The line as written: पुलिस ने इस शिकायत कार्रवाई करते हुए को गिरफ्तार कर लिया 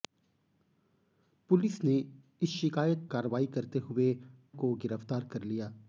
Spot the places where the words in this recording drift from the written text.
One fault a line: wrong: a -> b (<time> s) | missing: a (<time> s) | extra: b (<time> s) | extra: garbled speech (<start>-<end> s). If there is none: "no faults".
no faults